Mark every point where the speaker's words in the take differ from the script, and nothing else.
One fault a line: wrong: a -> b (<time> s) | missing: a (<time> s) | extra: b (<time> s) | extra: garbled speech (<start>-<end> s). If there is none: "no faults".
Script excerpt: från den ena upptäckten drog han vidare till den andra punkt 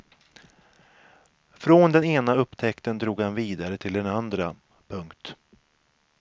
no faults